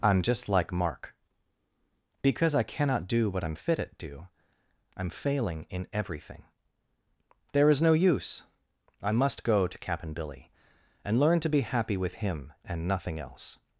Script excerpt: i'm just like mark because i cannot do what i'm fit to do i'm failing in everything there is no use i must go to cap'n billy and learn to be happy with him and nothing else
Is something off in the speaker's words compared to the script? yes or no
yes